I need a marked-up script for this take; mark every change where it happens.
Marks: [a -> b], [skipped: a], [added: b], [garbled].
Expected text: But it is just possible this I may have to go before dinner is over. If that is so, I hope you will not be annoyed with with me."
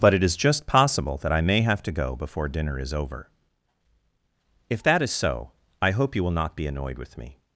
But it is just possible [this -> that] I may have to go before dinner is over. If that is so, I hope you will not be annoyed with [skipped: with] me."